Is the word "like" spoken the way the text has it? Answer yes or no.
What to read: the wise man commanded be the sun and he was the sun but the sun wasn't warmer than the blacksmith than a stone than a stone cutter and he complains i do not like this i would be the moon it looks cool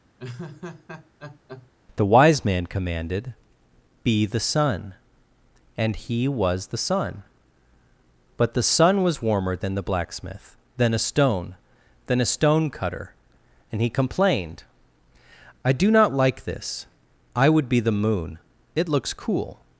yes